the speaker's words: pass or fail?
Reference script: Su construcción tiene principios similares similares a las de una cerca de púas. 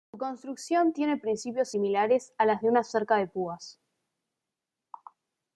fail